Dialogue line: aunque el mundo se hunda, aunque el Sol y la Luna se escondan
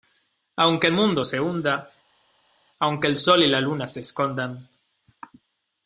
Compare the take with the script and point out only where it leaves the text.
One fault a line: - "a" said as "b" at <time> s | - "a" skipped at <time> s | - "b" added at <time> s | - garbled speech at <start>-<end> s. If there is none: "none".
none